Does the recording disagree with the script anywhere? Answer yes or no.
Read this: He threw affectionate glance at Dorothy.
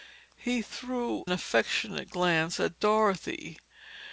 no